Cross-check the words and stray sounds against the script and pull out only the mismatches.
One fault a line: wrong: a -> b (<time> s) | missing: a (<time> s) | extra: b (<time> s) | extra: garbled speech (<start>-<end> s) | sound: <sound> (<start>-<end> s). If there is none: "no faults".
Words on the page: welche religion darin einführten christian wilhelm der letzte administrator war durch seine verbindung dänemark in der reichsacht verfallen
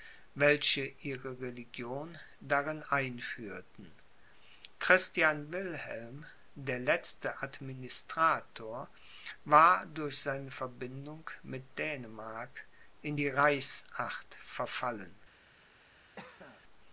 extra: ihre (1.0 s)
extra: mit (11.4 s)
wrong: der -> die (13.1 s)
sound: cough (16.2-16.6 s)